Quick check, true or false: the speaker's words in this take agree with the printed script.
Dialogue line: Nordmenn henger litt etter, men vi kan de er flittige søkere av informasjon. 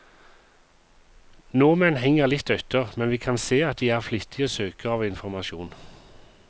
false